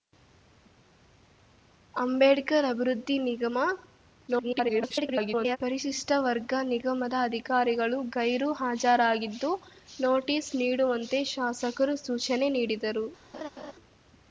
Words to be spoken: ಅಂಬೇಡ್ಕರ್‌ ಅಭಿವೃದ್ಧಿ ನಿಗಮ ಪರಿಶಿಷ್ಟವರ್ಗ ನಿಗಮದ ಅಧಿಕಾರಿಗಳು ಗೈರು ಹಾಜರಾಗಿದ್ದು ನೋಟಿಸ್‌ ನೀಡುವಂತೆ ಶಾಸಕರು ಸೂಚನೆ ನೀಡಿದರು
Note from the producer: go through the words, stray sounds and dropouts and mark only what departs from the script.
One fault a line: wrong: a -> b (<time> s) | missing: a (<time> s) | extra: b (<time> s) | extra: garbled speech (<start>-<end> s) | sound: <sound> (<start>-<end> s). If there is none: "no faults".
extra: garbled speech (4.3-5.6 s)
sound: laugh (13.3-13.7 s)